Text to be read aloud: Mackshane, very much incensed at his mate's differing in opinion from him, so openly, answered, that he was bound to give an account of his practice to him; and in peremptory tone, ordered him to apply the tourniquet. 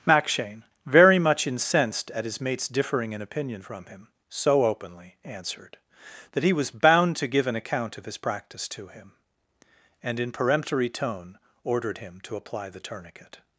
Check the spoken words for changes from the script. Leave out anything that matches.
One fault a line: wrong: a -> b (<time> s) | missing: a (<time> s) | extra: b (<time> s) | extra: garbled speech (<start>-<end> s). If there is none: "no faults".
no faults